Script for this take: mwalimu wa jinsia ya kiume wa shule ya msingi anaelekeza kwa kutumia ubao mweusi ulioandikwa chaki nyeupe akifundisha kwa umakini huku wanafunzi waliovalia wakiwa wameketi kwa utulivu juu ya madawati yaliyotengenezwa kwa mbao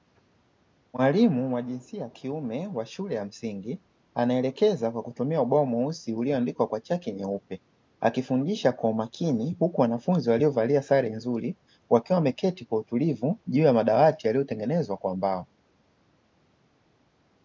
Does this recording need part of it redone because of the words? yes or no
yes